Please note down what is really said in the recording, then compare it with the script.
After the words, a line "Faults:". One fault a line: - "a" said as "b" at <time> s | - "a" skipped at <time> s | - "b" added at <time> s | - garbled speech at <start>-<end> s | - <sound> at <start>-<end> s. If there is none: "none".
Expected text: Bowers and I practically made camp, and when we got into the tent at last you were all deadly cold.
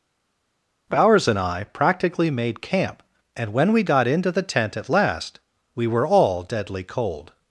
Bowers and I practically made camp, and when we got into the tent at last we were all deadly cold.
Faults:
- "you" said as "we" at 5.7 s